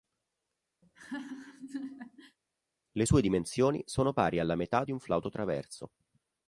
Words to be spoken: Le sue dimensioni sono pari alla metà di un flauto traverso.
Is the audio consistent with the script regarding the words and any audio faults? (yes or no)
no